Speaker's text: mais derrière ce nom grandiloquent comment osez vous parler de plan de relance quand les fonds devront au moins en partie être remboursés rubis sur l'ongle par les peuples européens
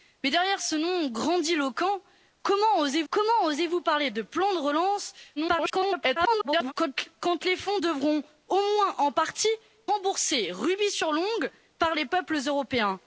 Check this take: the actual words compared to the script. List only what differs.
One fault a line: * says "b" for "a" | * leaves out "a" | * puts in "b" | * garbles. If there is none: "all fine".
* puts in "comment osez"
* garbles
* leaves out "être"